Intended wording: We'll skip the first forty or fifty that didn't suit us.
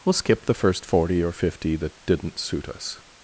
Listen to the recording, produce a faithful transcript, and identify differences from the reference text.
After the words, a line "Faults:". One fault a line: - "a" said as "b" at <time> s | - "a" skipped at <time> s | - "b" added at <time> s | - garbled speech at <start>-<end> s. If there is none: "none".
We'll skip the first forty or fifty that didn't suit us.
Faults:
none